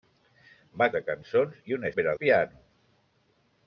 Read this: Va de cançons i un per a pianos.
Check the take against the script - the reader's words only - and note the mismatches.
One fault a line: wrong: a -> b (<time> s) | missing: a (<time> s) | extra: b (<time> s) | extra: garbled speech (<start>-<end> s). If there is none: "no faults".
no faults